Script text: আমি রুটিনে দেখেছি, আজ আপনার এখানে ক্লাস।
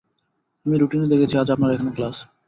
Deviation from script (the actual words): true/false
false